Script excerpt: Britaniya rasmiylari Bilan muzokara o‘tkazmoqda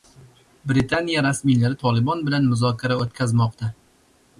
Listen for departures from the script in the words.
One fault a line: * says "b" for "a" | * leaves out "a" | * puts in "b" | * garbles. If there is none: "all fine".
* puts in "Tolibon"